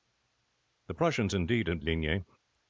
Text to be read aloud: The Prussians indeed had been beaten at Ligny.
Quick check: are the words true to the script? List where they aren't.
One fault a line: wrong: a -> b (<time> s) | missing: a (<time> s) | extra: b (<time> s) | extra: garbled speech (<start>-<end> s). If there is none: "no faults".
missing: been beaten at (1.8 s)